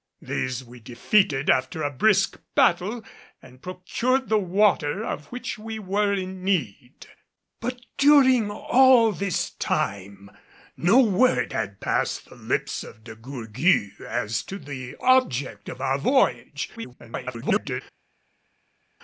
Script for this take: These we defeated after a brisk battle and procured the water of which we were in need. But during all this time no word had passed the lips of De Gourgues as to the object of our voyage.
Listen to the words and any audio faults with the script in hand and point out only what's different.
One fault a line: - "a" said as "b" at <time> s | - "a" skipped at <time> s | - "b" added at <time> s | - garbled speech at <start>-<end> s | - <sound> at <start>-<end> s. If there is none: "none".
- garbled speech at 16.8-17.8 s